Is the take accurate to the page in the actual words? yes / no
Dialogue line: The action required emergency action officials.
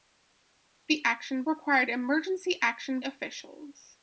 yes